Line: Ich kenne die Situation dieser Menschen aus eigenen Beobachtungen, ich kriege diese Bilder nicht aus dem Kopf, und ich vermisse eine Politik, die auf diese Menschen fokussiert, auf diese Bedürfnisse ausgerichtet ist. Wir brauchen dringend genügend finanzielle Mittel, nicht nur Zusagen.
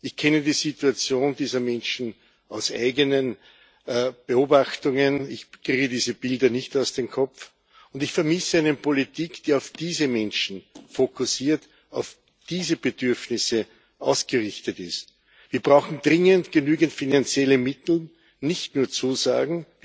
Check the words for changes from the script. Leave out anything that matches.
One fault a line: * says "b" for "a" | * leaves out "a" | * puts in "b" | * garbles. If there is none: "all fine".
all fine